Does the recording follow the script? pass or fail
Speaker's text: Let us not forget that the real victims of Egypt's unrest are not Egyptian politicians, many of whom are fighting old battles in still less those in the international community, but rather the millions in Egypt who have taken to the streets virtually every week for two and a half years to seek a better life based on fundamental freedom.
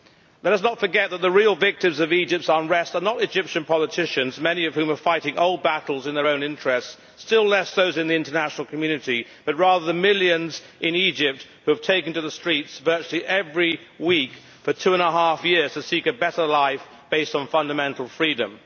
fail